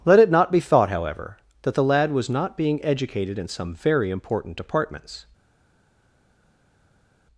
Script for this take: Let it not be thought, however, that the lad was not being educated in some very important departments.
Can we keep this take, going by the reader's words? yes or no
yes